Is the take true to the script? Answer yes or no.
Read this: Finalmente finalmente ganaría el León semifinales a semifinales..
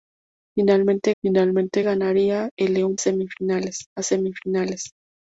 yes